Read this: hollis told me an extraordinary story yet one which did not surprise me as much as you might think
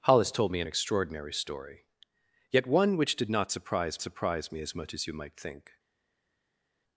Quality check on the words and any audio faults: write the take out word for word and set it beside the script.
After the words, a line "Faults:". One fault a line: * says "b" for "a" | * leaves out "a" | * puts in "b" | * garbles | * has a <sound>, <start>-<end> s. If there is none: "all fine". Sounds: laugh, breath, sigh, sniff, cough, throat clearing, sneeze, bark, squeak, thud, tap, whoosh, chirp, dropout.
hollis told me an extraordinary story yet one which did not surprise surprise me as much as you might think
Faults:
* puts in "surprise"